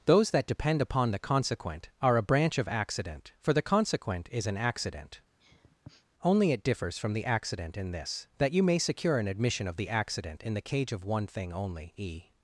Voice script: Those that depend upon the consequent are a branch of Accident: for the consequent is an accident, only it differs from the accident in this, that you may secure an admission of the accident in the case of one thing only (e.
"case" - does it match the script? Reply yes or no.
no